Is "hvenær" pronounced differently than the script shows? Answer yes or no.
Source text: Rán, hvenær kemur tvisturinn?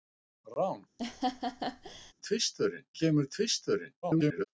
yes